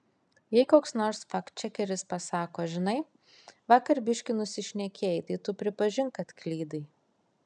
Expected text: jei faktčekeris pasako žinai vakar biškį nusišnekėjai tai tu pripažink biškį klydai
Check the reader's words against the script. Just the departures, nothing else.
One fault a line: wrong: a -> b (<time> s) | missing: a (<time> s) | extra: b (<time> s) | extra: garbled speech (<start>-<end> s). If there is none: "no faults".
extra: koks nors (0.7 s)
wrong: biškį -> kad (6.2 s)